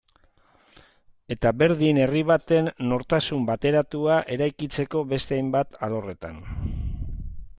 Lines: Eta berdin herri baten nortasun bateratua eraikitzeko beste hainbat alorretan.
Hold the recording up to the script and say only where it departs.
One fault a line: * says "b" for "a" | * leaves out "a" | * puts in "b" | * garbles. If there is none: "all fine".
all fine